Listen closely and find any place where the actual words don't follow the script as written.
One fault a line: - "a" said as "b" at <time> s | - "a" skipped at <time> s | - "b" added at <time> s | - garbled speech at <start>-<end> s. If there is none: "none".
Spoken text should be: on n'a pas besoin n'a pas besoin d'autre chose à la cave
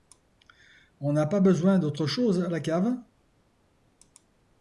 - "n'a pas besoin" skipped at 1.8 s